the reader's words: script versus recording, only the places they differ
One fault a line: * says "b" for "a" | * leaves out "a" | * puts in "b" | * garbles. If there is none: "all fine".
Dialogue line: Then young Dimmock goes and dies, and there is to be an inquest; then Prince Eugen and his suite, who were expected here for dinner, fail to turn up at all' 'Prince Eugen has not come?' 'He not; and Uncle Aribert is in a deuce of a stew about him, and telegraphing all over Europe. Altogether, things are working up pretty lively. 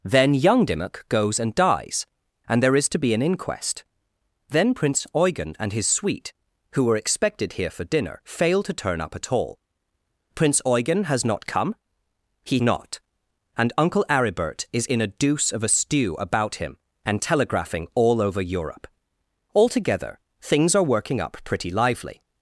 all fine